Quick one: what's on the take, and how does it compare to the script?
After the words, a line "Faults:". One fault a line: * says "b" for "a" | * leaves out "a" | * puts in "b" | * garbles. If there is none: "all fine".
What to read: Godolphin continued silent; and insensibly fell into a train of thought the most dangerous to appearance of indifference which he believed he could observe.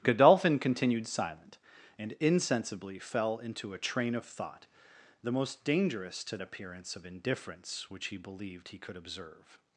Godolphin continued silent; and insensibly fell into a train of thought the most dangerous to appearance of indifference which he believed he could observe.
Faults:
all fine